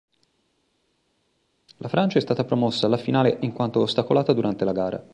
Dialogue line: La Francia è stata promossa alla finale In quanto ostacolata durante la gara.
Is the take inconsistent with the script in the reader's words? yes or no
no